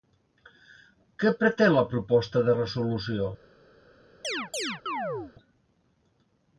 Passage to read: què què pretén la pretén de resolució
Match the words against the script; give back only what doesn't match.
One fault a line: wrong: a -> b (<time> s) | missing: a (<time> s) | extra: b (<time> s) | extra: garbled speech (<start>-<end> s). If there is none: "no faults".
missing: què (1.3 s)
wrong: pretén -> proposta (1.9 s)